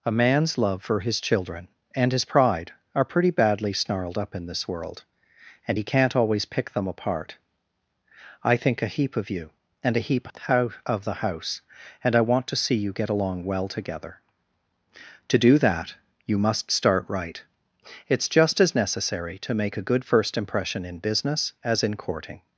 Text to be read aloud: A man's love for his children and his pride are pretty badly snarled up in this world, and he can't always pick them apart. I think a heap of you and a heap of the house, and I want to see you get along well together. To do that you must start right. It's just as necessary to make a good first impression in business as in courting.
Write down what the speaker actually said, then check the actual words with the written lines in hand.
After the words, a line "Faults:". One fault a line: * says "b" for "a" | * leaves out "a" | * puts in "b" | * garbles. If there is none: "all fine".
A man's love for his children and his pride are pretty badly snarled up in this world, and he can't always pick them apart. I think a heap of you and a heap out of the house, and I want to see you get along well together. To do that you must start right. It's just as necessary to make a good first impression in business as in courting.
Faults:
* puts in "out"